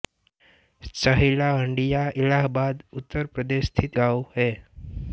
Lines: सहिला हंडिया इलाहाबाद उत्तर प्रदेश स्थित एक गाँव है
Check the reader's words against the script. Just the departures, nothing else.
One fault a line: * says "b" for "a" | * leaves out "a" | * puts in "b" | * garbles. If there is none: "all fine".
* leaves out "एक"